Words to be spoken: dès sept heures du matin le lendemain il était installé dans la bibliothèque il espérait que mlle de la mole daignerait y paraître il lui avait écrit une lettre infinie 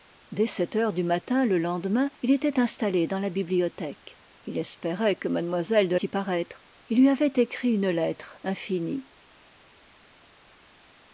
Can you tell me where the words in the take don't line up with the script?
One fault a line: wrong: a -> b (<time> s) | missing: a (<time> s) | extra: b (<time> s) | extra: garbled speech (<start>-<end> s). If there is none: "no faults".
missing: la mole daignerait (6.0 s)